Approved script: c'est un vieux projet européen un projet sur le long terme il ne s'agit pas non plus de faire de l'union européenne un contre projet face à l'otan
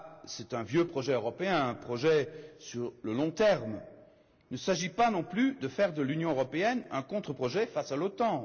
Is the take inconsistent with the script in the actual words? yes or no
no